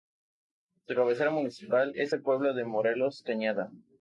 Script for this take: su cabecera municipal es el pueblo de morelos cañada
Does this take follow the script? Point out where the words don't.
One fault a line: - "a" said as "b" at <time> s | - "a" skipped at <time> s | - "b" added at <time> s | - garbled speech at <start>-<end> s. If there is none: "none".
none